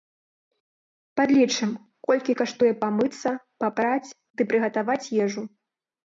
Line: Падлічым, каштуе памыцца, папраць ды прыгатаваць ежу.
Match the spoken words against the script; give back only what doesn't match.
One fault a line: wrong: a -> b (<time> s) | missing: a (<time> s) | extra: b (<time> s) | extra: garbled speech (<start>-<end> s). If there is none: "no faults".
extra: колькі (2.1 s)